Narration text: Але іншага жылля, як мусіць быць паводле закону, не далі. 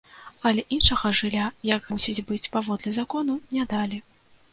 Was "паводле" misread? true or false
false